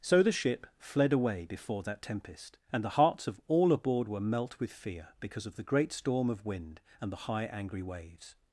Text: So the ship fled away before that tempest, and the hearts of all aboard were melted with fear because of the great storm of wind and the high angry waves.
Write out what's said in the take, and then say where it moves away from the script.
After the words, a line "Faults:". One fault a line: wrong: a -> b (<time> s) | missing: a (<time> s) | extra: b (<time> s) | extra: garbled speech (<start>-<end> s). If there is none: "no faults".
So the ship fled away before that tempest, and the hearts of all aboard were melt with fear because of the great storm of wind and the high angry waves.
Faults:
wrong: melted -> melt (4.2 s)